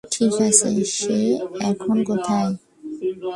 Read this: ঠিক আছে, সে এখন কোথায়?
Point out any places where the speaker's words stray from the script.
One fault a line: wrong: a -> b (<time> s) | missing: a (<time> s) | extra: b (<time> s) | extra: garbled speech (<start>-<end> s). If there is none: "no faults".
no faults